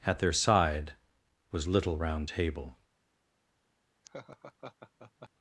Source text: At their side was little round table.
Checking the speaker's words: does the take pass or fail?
pass